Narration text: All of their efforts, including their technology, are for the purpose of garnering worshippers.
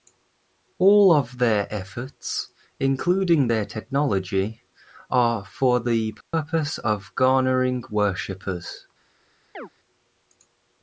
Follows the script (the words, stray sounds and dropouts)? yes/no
no